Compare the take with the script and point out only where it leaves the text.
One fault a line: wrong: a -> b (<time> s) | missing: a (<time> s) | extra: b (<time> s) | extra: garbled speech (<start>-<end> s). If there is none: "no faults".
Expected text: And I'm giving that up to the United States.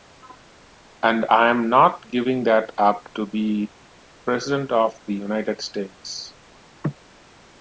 extra: not (1.7 s)
extra: be President of (3.3 s)